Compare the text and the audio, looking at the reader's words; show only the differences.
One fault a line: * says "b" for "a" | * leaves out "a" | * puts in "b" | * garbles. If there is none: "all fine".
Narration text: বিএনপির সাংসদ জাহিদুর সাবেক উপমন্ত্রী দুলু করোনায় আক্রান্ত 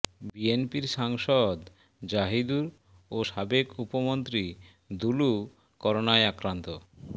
* puts in "ও"